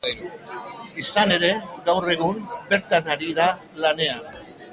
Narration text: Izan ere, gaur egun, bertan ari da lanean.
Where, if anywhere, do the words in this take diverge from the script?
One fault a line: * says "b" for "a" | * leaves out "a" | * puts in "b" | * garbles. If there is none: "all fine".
all fine